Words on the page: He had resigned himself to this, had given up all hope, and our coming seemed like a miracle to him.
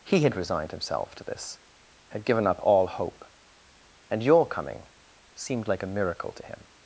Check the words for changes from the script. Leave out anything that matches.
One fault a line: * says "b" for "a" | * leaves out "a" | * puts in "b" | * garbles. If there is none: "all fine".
* says "your" for "our"